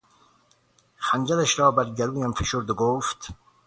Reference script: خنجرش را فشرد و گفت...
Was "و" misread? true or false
false